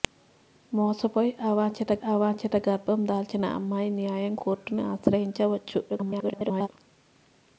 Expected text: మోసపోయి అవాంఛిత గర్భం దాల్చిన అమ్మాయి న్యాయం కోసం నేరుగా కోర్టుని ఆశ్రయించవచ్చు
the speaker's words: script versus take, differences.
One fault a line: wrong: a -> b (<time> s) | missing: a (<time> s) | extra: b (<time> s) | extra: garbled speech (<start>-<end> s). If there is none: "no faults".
extra: అవాంఛిత (2.0 s)
missing: కోసం నేరుగా (4.3 s)
extra: garbled speech (5.9-6.7 s)